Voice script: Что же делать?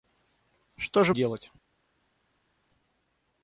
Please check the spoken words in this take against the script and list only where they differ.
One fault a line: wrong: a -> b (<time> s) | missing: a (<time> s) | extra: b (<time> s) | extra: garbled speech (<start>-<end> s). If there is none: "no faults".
no faults